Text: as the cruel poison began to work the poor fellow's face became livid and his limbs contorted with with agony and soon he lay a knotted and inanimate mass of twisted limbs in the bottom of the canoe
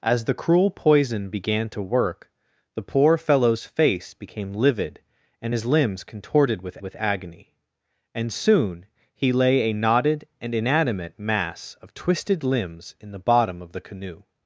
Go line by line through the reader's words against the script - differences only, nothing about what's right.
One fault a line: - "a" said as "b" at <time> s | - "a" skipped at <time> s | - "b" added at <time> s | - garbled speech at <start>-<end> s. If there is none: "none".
none